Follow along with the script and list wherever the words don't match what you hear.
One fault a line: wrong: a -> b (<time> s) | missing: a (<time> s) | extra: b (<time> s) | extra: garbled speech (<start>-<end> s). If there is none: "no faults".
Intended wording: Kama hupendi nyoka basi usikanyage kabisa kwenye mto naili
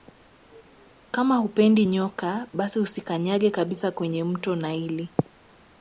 no faults